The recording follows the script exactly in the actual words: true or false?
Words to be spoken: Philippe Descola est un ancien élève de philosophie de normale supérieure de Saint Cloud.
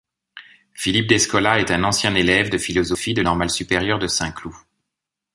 true